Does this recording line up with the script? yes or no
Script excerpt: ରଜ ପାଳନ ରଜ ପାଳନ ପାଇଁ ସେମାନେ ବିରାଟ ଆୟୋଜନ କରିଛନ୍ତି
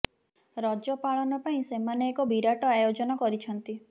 no